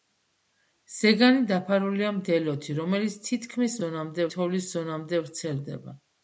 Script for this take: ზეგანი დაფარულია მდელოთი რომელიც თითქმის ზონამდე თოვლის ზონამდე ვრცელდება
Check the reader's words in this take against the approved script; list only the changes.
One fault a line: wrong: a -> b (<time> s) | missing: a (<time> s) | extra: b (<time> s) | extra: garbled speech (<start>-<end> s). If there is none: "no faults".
no faults